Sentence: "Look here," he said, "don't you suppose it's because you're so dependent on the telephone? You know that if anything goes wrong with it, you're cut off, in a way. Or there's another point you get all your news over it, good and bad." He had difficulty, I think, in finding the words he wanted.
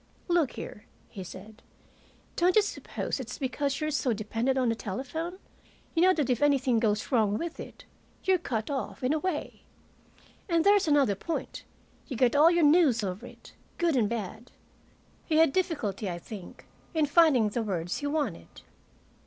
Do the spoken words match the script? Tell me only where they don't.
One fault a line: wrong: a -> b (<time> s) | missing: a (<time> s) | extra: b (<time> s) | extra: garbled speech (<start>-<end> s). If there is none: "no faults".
wrong: Or -> And (10.5 s)